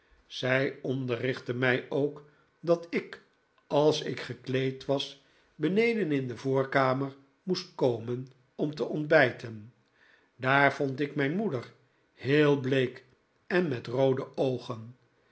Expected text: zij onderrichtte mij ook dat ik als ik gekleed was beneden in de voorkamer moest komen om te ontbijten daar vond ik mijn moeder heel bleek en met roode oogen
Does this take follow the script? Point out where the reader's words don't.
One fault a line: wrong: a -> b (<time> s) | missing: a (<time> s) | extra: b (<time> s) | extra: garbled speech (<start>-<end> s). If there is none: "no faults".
no faults